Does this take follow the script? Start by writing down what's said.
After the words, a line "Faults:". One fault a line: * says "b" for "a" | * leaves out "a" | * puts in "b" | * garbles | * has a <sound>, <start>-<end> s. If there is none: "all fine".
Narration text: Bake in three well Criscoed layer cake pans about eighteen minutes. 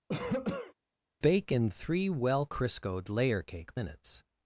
Bake in three well Criscoed layer cake minutes.
Faults:
* has a cough, 0.1-0.7 s
* leaves out "pans about eighteen"